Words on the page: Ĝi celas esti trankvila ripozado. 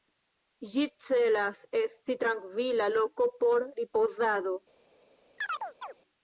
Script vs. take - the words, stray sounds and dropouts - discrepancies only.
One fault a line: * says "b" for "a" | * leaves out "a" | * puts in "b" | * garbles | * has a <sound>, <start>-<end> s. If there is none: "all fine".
* puts in "loko por"
* has a chirp, 5.4-5.9 s